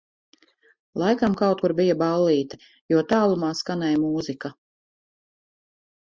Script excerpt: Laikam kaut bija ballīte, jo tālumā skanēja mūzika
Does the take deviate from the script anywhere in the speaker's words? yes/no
yes